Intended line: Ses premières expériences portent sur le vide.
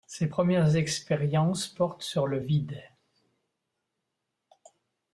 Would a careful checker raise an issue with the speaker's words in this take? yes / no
no